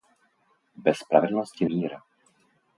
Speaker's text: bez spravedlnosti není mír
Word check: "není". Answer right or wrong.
wrong